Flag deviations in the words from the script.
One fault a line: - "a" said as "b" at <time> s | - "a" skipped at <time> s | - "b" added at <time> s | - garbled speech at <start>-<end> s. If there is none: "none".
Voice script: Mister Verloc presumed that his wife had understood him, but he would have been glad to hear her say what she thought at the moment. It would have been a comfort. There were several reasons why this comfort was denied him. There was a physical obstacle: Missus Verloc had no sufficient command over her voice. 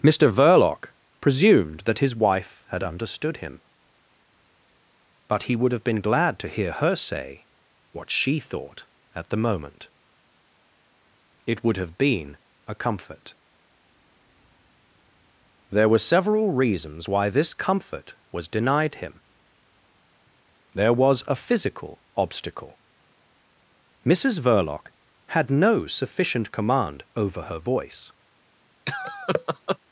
none